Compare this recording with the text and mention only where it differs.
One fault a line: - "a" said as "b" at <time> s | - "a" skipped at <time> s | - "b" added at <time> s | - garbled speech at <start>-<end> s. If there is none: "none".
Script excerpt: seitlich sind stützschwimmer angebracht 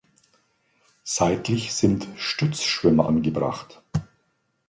none